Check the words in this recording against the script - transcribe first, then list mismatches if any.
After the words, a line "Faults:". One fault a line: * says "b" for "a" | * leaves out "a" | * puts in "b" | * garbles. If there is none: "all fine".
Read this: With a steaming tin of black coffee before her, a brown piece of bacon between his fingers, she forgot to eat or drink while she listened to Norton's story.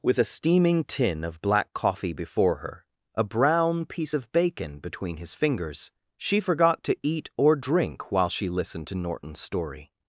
With a steaming tin of black coffee before her, a brown piece of bacon between his fingers, she forgot to eat or drink while she listened to Norton's story.
Faults:
all fine